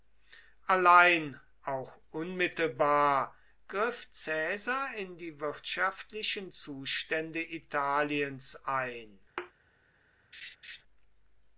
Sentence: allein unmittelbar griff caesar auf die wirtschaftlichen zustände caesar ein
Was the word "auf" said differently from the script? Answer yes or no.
yes